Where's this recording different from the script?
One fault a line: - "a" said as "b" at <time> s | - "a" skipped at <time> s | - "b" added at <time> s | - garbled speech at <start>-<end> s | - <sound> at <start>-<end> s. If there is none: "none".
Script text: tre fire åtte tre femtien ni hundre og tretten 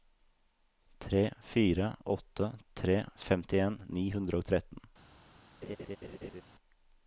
- laugh at 5.6-6.4 s